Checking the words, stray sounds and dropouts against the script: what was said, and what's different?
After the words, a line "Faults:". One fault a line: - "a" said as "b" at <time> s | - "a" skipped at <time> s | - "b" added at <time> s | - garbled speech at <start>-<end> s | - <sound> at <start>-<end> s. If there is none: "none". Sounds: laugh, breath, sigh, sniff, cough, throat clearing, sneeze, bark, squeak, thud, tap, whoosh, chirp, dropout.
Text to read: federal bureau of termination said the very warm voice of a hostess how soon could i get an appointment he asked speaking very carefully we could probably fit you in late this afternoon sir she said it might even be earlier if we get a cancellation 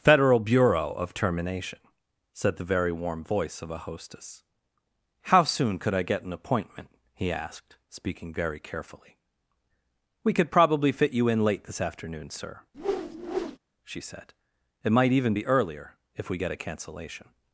federal bureau of termination said the very warm voice of a hostess how soon could i get an appointment he asked speaking very carefully we could probably fit you in late this afternoon sir she said it might even be earlier if we get a cancellation
Faults:
- whoosh at 12.7-13.6 s